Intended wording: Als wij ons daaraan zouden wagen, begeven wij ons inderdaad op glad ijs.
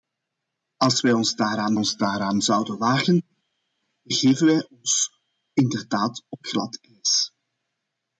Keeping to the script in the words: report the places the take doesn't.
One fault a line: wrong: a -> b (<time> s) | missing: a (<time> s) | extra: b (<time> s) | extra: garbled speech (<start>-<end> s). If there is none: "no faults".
extra: ons daaraan (1.7 s)